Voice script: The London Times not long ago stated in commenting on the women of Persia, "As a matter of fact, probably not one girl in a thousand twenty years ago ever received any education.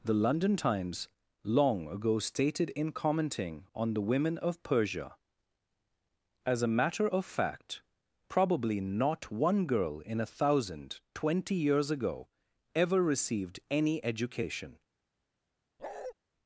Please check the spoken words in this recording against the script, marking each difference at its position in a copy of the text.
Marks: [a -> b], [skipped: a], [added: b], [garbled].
The London Times [skipped: not] long ago stated in commenting on the women of Persia, "As a matter of fact, probably not one girl in a thousand twenty years ago ever received any education.